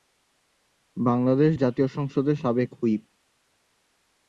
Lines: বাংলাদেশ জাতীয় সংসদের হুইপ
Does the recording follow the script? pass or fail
fail